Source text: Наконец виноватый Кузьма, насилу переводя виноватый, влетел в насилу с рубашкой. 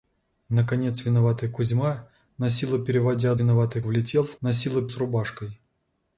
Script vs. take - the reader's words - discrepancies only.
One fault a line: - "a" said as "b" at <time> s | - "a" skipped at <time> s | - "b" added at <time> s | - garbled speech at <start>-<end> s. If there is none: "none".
none